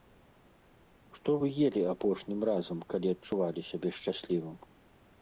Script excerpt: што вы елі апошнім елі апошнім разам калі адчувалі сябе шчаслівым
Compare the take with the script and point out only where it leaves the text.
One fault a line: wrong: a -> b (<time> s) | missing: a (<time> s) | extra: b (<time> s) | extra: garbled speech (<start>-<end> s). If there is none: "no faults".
missing: елі апошнім (2.4 s)